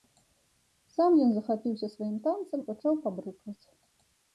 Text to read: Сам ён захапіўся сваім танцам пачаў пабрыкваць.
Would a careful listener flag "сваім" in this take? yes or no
no